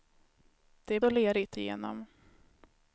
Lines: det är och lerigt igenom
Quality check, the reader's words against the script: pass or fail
pass